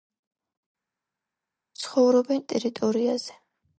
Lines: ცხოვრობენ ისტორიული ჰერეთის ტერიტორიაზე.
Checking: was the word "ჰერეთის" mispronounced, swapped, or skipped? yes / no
yes